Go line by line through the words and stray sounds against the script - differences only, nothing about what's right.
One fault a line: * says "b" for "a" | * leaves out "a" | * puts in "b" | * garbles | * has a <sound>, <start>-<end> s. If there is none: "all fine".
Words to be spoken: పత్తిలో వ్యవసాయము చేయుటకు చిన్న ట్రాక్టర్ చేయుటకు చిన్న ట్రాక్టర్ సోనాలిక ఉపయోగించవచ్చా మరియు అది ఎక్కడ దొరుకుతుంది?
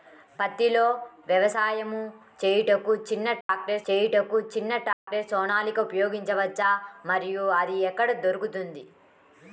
* has a dropout, 3.4-3.5 s
* has a dropout, 4.9-5.1 s